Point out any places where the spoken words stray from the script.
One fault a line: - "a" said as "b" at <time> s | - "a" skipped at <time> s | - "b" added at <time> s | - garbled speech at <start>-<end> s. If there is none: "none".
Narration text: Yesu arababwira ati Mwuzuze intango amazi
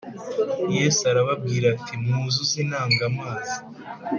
none